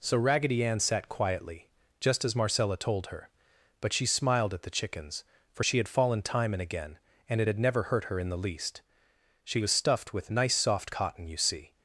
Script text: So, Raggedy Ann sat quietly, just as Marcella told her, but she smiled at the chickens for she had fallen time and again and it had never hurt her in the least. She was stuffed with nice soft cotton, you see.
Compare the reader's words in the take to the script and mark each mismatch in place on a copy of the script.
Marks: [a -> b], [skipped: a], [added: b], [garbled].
So, Raggedy Ann sat quietly, just as Marcella told her, but she smiled at the chickens for she had fallen time and again and it had never hurt her in the least. She was stuffed with nice soft cotton, you see.